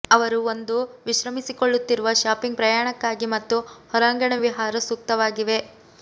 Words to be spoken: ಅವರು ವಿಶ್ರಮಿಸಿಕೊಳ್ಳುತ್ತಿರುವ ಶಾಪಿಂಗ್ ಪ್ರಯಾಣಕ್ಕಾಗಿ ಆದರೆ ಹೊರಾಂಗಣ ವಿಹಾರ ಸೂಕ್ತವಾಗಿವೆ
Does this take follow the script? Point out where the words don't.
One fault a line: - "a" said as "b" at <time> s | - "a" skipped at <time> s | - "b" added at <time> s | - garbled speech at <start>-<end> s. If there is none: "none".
- "ಒಂದು" added at 0.4 s
- "ಆದರೆ" said as "ಮತ್ತು" at 3.3 s